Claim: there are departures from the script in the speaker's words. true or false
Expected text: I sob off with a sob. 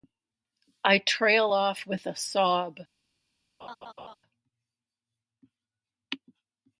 true